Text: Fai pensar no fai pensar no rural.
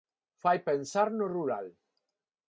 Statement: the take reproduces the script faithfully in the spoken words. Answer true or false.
false